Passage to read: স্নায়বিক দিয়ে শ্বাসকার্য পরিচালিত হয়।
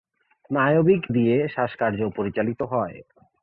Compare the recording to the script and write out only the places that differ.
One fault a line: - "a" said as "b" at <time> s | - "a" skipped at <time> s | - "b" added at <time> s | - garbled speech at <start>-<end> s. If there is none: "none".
none